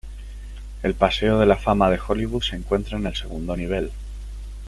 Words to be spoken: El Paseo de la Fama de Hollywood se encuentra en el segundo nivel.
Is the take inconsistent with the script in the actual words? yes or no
no